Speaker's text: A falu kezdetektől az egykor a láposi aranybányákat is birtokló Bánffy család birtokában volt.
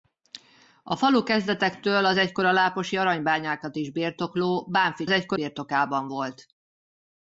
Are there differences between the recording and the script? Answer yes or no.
yes